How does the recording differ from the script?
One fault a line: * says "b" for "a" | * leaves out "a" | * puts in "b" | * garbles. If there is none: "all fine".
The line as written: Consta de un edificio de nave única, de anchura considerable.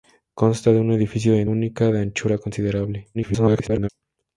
* leaves out "nave"
* garbles